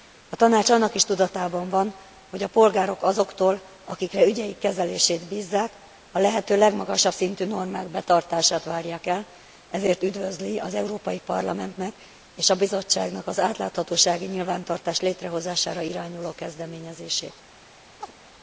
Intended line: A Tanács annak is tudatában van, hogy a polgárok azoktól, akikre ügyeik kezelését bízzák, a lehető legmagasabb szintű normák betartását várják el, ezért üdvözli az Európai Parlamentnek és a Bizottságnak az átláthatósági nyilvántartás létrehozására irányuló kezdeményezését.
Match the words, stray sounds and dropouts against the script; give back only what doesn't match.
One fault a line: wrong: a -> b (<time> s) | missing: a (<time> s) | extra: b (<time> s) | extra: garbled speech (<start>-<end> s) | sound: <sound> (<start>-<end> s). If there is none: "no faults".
sound: chirp (18.0-18.1 s)